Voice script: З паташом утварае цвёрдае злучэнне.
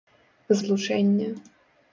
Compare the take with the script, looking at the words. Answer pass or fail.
fail